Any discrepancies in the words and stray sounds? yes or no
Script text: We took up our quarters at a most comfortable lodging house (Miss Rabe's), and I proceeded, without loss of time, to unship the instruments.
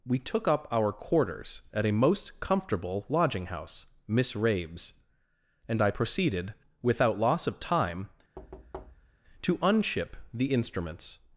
yes